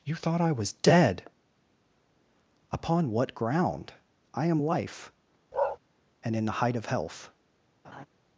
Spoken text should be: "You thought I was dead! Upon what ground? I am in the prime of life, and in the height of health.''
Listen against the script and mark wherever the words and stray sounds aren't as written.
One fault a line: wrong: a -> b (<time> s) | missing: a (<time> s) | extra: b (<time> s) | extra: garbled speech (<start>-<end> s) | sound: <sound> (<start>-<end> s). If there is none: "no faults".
missing: in the prime of (4.6 s)
sound: bark (5.5-5.8 s)
sound: laugh (7.8-8.1 s)